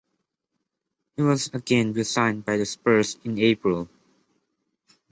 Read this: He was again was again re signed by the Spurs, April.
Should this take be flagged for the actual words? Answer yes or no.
yes